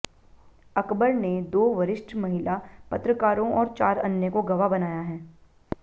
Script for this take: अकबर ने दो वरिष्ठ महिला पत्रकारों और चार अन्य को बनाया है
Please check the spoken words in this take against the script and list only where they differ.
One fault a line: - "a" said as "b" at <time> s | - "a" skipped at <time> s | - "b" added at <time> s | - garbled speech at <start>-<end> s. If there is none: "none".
- "गवाह" added at 4.4 s